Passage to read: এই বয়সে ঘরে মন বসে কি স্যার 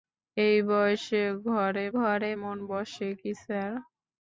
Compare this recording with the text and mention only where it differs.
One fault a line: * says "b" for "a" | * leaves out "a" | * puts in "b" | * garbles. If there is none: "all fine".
* puts in "ঘরে"